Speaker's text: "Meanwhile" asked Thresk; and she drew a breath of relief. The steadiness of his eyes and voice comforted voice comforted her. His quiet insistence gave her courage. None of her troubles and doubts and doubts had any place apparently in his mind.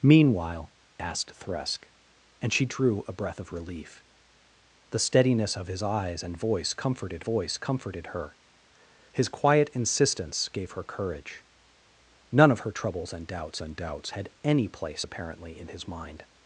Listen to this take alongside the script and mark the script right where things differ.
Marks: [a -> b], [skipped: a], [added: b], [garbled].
"Meanwhile" asked Thresk; and she drew a breath of relief. The steadiness of his eyes and voice comforted voice comforted her. His quiet insistence gave her courage. None of her troubles and doubts and doubts had any place apparently in his mind.